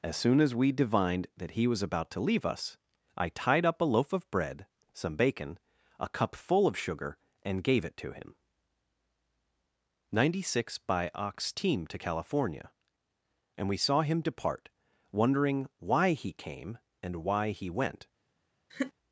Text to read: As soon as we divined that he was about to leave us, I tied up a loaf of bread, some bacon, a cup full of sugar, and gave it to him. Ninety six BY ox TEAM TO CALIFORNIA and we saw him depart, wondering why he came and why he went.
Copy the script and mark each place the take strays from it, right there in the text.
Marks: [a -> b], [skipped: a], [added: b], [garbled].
As soon as we divined that he was about to leave us, I tied up a loaf of bread, some bacon, a cup full of sugar, and gave it to him. Ninety six BY ox TEAM TO CALIFORNIA and we saw him depart, wondering why he came and why he went.